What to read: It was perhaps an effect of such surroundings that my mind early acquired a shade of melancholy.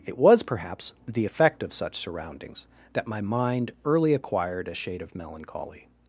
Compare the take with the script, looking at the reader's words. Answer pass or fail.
fail